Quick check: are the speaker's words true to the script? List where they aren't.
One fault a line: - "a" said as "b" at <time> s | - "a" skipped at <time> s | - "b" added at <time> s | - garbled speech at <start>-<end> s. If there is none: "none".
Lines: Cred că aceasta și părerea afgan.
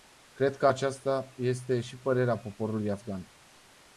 - "este" added at 1.4 s
- "poporului" added at 2.4 s